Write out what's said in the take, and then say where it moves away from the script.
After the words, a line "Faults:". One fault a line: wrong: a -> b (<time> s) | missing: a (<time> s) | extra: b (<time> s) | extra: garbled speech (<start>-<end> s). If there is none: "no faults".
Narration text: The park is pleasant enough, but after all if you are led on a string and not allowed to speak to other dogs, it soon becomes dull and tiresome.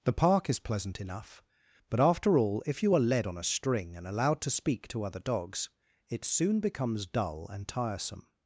The park is pleasant enough, but after all if you are led on a string and allowed to speak to other dogs, it soon becomes dull and tiresome.
Faults:
missing: not (4.1 s)